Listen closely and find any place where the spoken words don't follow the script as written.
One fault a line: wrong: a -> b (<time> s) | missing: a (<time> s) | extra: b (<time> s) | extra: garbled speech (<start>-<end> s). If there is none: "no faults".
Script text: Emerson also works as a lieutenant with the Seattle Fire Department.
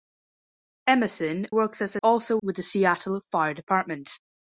missing: also (1.5 s)
wrong: lieutenant -> also (2.0 s)